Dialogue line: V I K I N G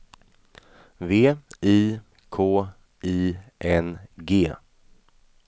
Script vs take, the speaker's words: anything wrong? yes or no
no